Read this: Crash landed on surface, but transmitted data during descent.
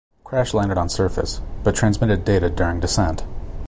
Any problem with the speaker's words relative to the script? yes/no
no